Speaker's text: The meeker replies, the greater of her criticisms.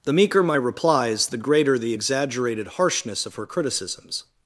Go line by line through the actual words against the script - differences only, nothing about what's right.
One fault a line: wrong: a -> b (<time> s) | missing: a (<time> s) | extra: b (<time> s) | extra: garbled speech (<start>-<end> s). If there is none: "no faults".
extra: my (0.4 s)
extra: the exaggerated harshness (1.8 s)